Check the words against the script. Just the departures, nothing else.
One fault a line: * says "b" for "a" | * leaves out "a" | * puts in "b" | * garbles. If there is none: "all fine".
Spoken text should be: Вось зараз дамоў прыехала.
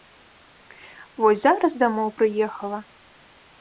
all fine